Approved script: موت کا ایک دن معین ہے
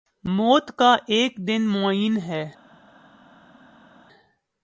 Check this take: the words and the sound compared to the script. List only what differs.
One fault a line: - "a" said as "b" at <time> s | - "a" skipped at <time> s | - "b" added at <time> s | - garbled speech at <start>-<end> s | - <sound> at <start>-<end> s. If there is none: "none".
none